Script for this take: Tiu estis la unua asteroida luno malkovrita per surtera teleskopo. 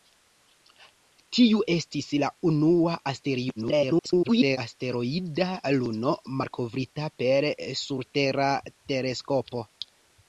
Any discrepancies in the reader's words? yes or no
yes